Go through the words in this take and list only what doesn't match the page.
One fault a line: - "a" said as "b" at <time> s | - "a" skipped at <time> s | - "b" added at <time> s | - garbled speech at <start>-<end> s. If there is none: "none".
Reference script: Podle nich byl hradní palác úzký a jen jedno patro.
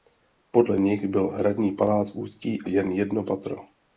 none